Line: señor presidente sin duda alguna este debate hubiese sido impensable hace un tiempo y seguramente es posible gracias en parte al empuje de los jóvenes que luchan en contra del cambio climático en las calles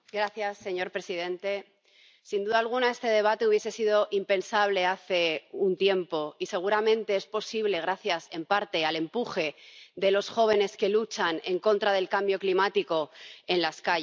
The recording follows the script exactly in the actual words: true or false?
true